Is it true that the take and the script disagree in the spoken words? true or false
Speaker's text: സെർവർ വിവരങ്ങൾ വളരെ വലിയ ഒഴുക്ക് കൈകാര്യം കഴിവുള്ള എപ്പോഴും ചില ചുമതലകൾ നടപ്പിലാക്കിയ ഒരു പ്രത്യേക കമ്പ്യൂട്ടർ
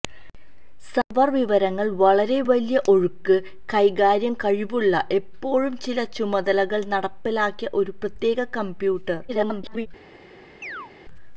true